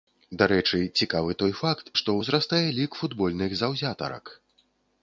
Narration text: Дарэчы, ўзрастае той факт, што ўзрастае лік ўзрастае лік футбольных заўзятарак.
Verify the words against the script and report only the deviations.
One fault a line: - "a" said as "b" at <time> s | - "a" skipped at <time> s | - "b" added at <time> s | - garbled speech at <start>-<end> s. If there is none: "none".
- "ўзрастае" said as "цікавы" at 1.0 s
- "ўзрастае лік" skipped at 2.9 s